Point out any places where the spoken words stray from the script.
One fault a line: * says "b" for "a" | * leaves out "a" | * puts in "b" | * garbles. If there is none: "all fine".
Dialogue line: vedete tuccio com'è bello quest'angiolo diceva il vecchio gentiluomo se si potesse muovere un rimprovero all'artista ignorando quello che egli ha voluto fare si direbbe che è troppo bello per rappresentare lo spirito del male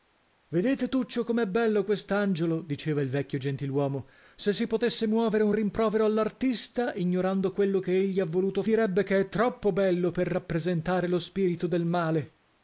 * leaves out "fare si"